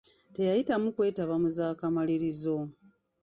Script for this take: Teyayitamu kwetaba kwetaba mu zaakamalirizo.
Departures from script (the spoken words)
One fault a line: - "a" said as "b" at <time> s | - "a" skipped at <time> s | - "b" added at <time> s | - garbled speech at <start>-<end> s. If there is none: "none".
- "kwetaba" skipped at 1.4 s